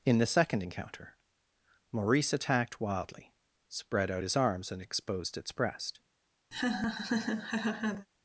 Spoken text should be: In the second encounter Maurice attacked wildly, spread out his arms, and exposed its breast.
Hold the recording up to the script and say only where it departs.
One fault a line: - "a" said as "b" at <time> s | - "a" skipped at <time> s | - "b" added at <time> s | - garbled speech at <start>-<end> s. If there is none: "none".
none